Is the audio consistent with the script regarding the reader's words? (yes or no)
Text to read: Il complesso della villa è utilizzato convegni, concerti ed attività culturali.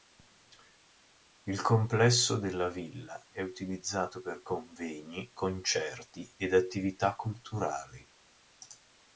no